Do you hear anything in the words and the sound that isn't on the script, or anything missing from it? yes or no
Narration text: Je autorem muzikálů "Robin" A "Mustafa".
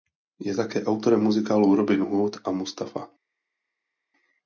yes